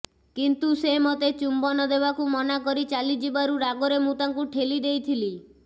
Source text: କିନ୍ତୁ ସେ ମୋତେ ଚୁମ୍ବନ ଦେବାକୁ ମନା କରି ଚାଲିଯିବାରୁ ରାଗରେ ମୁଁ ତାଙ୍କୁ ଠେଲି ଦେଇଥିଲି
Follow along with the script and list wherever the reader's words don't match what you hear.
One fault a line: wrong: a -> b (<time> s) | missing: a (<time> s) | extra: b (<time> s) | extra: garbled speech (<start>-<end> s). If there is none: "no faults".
no faults